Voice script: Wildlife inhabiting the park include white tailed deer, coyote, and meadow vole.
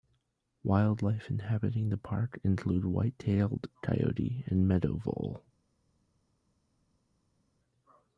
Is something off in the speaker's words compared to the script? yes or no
yes